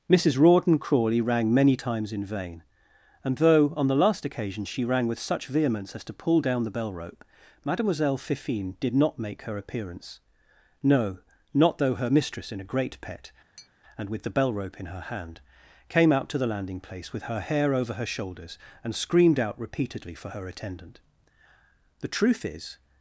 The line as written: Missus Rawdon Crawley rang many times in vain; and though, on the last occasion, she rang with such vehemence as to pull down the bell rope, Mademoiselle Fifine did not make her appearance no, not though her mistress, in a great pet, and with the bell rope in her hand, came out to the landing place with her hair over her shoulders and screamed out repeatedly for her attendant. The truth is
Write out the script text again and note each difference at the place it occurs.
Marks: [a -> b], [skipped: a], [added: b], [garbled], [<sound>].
Missus Rawdon Crawley rang many times in vain; and though, on the last occasion, she rang with such vehemence as to pull down the bell rope, Mademoiselle Fifine did not make her appearance no, not though her mistress, in a great pet, [tap] and with the bell rope in her hand, came out to the landing place with her hair over her shoulders and screamed out repeatedly for her attendant. The truth is